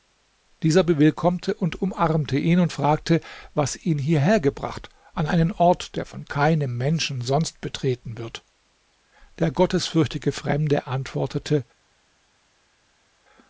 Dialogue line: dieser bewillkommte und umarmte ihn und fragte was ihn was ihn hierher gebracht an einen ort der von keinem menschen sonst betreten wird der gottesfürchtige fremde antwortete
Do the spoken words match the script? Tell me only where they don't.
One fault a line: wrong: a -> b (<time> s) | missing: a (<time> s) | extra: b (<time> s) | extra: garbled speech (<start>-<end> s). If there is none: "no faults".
missing: was ihn (4.0 s)